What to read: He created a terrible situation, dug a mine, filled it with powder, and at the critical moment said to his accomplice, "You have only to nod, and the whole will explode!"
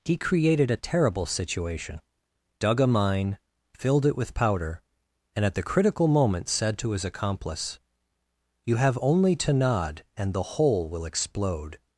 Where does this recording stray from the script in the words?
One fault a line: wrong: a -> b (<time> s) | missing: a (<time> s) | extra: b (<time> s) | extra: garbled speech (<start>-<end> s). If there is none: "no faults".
no faults